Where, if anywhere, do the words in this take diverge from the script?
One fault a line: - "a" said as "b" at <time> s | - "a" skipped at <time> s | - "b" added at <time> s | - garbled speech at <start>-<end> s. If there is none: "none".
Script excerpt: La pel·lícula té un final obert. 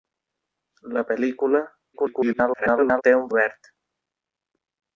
- garbled speech at 1.9-3.0 s
- "final" skipped at 3.3 s